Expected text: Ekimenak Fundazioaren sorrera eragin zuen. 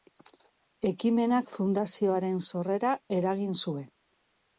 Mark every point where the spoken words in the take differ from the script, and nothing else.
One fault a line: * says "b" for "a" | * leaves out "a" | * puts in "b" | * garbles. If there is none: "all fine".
all fine